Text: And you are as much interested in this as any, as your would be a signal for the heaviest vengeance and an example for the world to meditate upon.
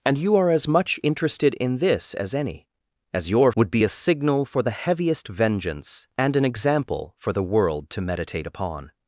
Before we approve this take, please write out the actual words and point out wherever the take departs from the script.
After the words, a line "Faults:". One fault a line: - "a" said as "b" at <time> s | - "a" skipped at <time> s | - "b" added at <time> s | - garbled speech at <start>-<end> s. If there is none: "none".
And you are as much interested in this as any, as your would be a signal for the heaviest vengeance and an example for the world to meditate upon.
Faults:
none